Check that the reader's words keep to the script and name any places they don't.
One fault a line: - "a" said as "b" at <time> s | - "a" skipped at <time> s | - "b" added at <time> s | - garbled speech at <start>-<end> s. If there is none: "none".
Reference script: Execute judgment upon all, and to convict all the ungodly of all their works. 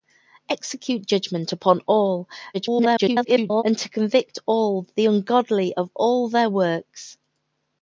- garbled speech at 2.5-3.6 s